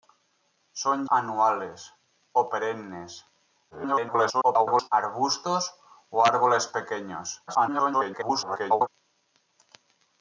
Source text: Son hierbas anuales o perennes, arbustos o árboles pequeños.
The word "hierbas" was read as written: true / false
false